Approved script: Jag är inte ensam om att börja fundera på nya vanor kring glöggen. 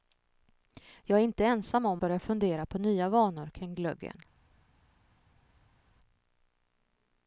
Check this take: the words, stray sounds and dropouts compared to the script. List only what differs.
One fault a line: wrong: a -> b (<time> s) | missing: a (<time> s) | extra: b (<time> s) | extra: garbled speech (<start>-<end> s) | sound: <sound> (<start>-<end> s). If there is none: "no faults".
missing: att (2.0 s)